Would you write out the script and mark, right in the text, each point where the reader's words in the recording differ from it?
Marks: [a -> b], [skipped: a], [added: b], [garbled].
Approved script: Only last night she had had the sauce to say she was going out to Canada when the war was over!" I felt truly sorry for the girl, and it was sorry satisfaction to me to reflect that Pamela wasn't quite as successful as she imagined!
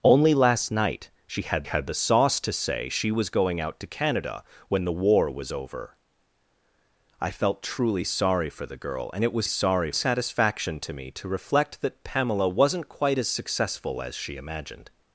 Only last night she had had the sauce to say she was going out to Canada when the war was over!" I felt truly sorry for the girl, and it was sorry satisfaction to me to reflect that Pamela wasn't quite as successful as she imagined!